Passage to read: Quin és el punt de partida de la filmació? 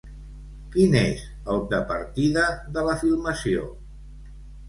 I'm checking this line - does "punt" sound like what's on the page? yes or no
no